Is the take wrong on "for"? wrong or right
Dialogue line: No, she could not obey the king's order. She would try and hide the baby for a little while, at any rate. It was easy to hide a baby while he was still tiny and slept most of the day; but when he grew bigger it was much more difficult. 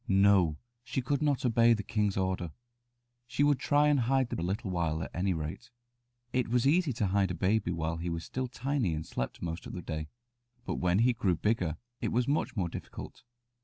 wrong